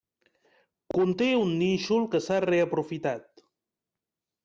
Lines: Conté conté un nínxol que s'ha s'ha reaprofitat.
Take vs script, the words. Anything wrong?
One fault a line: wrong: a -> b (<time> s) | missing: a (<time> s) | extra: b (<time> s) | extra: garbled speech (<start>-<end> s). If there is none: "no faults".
missing: conté (1.3 s)
missing: s'ha (2.4 s)